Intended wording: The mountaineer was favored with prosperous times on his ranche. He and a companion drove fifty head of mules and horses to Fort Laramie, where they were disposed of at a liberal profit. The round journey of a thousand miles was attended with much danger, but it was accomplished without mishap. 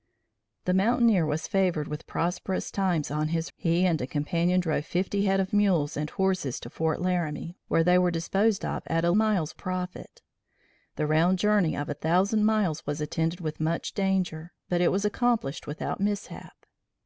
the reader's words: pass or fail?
fail